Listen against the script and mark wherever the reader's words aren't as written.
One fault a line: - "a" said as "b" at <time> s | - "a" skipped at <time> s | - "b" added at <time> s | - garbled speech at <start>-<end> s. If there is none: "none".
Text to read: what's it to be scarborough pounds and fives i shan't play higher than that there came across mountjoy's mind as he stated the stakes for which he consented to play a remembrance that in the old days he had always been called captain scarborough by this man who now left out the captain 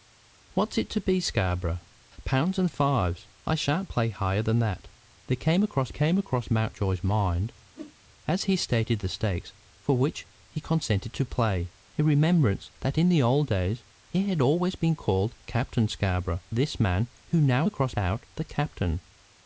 - "came across" added at 5.9 s
- "by" skipped at 16.4 s
- "left" said as "across" at 17.6 s